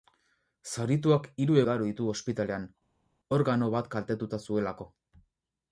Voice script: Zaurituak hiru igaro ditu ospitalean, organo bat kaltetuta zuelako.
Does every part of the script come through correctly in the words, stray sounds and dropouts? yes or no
yes